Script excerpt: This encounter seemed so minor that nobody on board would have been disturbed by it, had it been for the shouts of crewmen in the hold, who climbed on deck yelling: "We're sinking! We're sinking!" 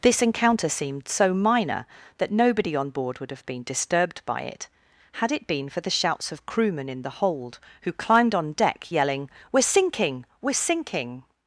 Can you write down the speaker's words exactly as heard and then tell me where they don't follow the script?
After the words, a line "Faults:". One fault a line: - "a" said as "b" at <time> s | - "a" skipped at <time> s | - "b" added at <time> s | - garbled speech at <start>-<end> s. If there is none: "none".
This encounter seemed so minor that nobody on board would have been disturbed by it, had it been for the shouts of crewmen in the hold, who climbed on deck yelling: "We're sinking! We're sinking!"
Faults:
none